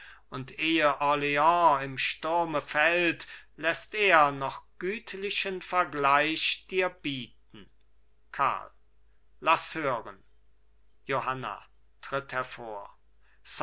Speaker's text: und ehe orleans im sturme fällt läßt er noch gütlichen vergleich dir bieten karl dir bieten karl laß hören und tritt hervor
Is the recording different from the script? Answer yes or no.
yes